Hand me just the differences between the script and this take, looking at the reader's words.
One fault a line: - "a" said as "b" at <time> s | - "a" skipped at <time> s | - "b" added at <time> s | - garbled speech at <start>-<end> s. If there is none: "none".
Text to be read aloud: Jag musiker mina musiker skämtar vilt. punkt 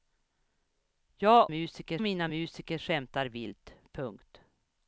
none